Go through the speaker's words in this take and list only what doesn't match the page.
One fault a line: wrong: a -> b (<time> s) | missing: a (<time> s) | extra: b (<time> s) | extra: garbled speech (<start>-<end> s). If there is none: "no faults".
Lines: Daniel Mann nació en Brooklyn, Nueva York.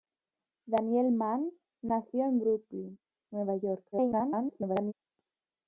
extra: garbled speech (3.9-4.9 s)